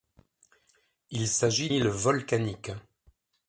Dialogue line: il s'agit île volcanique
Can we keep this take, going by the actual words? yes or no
yes